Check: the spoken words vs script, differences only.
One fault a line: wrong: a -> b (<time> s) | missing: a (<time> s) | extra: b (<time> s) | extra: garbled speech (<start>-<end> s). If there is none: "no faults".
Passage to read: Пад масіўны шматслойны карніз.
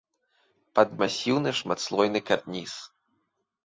no faults